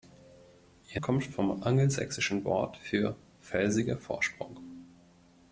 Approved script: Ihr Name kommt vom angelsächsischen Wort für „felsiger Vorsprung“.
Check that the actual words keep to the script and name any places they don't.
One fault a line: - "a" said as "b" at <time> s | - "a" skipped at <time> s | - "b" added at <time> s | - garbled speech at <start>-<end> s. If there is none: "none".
- "Name" skipped at 1.0 s